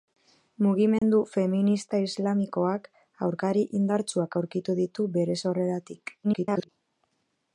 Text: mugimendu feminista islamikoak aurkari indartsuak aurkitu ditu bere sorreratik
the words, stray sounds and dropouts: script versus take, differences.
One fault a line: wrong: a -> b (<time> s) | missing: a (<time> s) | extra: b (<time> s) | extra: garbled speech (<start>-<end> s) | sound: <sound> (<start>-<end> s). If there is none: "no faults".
sound: dropout (1.0-1.0 s)
extra: garbled speech (6.2-6.7 s)